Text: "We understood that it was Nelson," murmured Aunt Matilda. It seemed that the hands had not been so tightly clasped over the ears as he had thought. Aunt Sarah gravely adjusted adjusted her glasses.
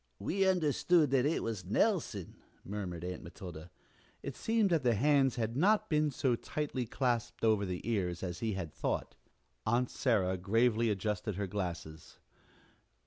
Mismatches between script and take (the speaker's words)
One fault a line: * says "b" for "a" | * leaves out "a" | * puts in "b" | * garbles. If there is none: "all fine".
* leaves out "adjusted"